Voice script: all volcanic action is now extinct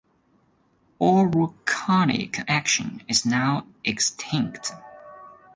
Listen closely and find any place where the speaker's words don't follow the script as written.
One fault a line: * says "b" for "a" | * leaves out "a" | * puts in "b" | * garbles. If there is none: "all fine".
all fine